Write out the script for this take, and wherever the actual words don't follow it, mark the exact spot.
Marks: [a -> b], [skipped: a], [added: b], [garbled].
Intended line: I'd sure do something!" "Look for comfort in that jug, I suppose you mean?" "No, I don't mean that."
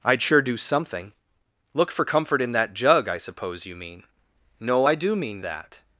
I'd sure do something!" "Look for comfort in that jug, I suppose you mean?" "No, I [don't -> do] mean that."